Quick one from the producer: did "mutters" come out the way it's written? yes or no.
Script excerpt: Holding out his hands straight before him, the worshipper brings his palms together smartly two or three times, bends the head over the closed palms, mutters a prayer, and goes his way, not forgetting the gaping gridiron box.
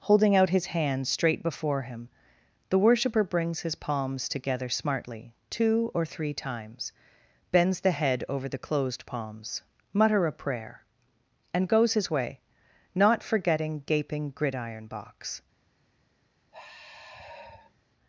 no